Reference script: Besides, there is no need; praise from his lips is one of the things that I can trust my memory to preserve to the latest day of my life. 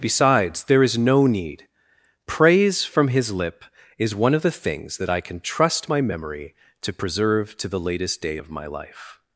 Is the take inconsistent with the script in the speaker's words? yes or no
yes